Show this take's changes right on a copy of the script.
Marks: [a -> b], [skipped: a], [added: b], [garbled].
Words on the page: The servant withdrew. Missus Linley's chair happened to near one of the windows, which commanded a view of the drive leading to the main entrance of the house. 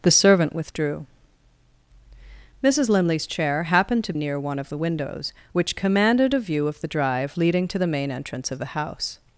The servant withdrew. Missus Linley's chair happened to near one of the windows, which commanded a view of the drive leading to the main entrance of the house.